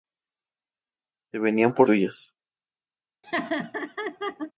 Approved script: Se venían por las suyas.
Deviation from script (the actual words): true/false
true